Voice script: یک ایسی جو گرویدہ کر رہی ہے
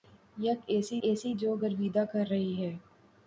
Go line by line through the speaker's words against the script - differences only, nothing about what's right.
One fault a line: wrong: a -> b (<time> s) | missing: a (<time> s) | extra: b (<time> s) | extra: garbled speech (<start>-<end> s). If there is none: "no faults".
extra: ایسی (1.0 s)